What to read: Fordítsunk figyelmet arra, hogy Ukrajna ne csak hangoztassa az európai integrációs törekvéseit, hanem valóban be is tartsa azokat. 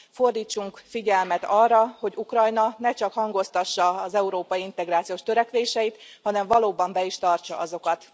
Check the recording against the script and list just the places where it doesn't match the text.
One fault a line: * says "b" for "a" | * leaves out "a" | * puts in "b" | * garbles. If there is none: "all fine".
all fine